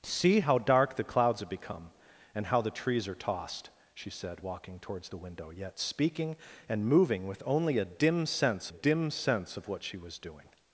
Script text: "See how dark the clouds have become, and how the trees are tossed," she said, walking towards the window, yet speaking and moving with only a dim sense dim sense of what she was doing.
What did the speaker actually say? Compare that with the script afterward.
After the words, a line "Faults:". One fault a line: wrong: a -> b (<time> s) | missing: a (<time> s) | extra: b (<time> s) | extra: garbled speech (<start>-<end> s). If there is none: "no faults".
"See how dark the clouds have become, and how the trees are tossed," she said, walking towards the window, yet speaking and moving with only a dim sense dim sense of what she was doing.
Faults:
no faults